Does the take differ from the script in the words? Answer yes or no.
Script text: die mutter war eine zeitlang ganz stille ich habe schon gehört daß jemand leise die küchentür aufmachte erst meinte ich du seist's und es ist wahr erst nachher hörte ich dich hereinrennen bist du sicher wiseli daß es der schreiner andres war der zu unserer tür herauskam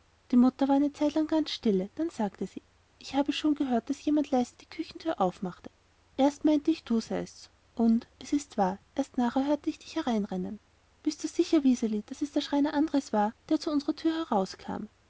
yes